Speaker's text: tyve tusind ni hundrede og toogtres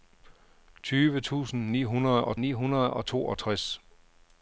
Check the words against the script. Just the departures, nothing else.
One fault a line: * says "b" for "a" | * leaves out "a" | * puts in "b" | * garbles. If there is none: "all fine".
* puts in "ni hundrede og"